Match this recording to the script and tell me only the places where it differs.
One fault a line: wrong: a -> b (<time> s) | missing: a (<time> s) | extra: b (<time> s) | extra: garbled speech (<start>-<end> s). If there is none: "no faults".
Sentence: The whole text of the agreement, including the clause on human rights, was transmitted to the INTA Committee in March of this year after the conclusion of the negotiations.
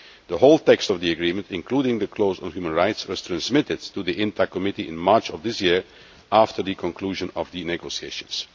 no faults